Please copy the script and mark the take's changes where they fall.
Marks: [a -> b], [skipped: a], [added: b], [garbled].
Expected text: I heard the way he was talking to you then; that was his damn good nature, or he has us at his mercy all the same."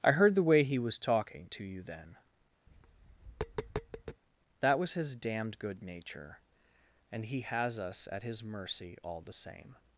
I heard the way he was talking to you then; that was his [damn -> damned] good nature, [or -> and] he has us at his mercy all the same."